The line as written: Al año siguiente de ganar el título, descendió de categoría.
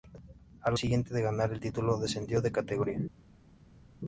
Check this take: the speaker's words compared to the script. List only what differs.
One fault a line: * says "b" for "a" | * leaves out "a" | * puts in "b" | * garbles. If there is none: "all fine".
* leaves out "año"